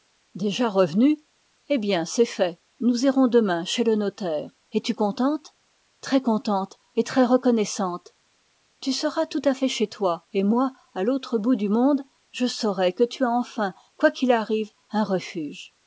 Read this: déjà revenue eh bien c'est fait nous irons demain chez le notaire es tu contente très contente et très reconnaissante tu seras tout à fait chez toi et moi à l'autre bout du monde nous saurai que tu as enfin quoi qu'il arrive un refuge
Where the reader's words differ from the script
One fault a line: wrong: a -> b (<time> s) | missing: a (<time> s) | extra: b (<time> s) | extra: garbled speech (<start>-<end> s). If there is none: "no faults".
wrong: nous -> je (12.3 s)